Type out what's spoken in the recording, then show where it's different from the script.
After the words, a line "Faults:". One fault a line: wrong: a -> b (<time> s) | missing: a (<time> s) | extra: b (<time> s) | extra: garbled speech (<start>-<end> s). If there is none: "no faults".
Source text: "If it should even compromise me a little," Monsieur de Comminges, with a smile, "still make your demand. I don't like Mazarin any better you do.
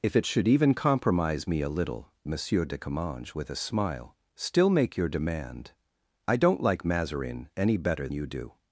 "If it should even compromise me a little," Monsieur de Comminges, with a smile, "still make your demand. I don't like Mazarin any better you do.
Faults:
no faults